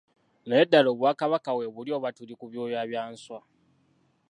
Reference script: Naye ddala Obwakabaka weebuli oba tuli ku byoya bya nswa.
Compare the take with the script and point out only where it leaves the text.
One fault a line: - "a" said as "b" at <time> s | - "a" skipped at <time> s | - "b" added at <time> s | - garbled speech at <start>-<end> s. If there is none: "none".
none